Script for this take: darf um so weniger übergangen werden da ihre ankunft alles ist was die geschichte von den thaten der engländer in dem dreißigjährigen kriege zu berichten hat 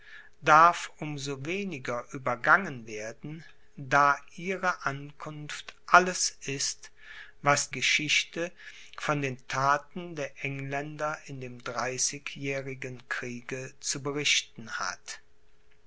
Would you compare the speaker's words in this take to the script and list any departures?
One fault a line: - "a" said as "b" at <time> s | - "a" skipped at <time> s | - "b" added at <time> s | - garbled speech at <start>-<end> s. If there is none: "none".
- "die" skipped at 7.7 s